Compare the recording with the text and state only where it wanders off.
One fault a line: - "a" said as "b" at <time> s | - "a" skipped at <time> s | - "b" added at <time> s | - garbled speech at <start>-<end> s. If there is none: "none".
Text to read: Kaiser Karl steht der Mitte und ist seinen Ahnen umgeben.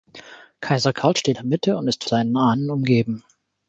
none